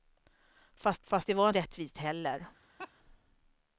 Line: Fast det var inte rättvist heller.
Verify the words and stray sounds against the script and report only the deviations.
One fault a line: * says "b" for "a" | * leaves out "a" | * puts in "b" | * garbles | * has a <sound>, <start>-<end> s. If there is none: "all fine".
* puts in "fast"
* leaves out "inte"
* has a laugh, 2.8-2.9 s